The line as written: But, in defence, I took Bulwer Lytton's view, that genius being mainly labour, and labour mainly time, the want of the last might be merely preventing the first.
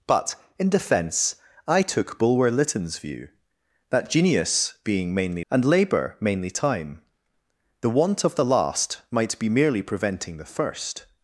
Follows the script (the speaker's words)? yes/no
no